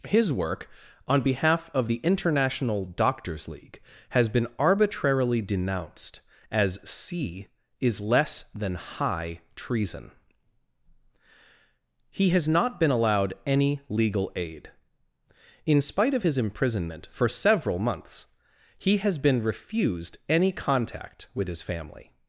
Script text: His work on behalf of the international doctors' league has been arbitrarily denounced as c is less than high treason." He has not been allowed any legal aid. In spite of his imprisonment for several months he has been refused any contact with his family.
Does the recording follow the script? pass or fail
pass